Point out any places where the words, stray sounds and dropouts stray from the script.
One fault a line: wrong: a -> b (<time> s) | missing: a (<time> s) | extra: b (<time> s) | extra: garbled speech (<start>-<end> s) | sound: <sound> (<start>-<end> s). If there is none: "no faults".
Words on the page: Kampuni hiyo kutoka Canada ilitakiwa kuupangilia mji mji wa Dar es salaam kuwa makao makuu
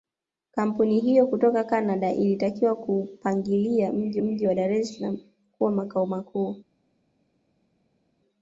no faults